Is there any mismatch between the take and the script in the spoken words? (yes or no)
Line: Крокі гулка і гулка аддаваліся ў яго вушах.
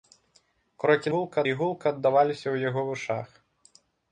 no